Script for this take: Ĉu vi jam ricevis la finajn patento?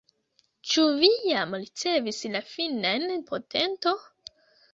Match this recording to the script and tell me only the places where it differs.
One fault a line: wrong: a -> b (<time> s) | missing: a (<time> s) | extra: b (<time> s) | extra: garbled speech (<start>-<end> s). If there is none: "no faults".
no faults